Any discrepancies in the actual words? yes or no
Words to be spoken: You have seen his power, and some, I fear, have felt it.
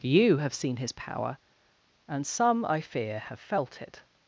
no